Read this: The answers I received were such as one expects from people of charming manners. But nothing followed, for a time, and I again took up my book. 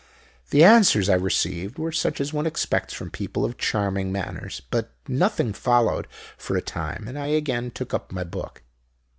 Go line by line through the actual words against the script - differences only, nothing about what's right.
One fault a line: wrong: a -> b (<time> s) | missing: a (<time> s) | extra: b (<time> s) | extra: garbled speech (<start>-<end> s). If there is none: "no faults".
no faults